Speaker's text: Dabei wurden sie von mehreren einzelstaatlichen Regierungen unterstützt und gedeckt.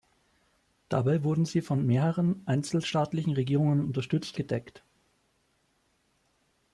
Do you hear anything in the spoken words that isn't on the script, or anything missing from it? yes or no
yes